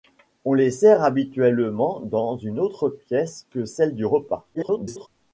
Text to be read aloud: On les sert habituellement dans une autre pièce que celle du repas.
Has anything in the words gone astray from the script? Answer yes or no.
yes